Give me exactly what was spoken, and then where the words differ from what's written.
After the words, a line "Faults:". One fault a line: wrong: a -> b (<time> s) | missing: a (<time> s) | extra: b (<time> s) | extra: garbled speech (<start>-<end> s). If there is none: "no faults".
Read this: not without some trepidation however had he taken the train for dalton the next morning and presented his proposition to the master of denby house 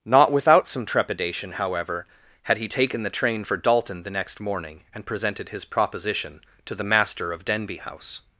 not without some trepidation however had he taken the train for dalton the next morning and presented his proposition to the master of denby house
Faults:
no faults